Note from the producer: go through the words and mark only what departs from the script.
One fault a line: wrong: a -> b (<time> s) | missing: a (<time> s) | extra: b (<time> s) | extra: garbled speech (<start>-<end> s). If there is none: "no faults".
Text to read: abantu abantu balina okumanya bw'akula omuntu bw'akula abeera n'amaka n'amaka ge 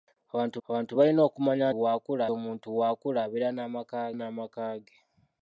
no faults